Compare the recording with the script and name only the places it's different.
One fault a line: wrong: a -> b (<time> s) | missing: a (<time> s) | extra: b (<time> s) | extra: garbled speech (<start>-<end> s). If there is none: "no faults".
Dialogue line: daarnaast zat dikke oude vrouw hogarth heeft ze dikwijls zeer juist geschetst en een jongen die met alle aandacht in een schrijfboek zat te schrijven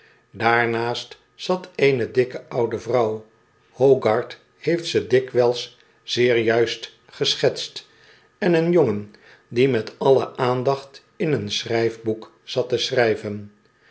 extra: eene (1.8 s)